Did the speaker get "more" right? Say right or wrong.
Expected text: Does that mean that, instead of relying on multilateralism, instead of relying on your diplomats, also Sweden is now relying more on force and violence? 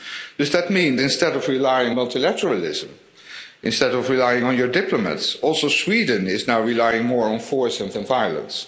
right